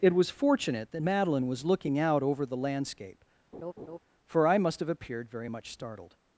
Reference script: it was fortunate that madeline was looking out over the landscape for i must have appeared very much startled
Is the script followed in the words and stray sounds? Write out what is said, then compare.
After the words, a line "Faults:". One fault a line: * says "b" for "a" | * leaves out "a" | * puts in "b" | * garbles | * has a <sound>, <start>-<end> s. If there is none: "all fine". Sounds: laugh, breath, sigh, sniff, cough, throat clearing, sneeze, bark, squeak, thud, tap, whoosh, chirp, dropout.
it was fortunate that madeline was looking out over the landscape for i must have appeared very much startled
Faults:
* has a laugh, 3.5-4.0 s